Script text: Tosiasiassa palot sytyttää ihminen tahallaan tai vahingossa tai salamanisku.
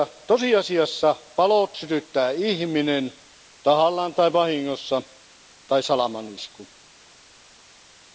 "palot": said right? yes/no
yes